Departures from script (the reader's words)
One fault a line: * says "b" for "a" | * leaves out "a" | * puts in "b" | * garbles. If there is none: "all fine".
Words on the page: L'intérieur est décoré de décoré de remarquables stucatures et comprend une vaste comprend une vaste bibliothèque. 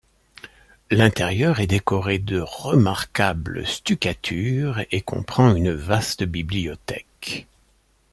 * leaves out "décoré de"
* leaves out "comprend une vaste"